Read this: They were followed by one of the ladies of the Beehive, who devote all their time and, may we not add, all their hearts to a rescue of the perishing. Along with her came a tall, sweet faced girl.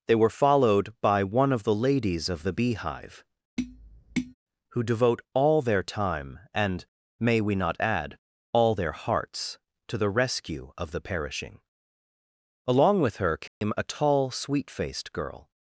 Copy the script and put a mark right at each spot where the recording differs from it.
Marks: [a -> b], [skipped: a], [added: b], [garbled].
They were followed by one of the ladies of the Beehive, who devote all their time and, may we not add, all their hearts to [a -> the] rescue of the perishing. Along with her came a tall, sweet faced girl.